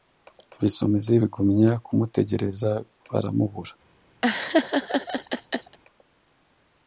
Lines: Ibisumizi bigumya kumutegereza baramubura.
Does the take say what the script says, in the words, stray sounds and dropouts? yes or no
no